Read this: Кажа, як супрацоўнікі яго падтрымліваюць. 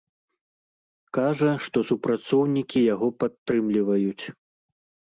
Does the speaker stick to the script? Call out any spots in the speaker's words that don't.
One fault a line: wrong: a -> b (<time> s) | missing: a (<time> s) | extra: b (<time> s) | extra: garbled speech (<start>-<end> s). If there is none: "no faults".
wrong: як -> што (1.7 s)